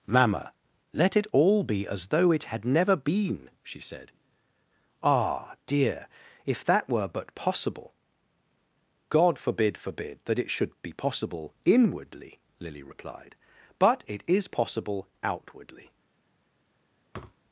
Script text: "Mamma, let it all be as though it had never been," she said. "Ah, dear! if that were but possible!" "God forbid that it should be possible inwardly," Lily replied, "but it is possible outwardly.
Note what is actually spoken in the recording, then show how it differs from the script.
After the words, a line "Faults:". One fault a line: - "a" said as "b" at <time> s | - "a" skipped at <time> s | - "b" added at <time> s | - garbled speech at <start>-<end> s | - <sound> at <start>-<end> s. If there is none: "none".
"Mamma, let it all be as though it had never been," she said. "Ah, dear! if that were but possible!" "God forbid forbid that it should be possible inwardly," Lily replied, "but it is possible outwardly.
Faults:
- "forbid" added at 9.8 s
- thud at 17.1-17.4 s